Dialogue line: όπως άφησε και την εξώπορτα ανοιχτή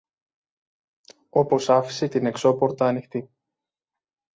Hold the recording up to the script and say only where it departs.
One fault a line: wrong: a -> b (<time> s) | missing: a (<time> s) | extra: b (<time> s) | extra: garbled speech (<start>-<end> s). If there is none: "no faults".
missing: και (2.1 s)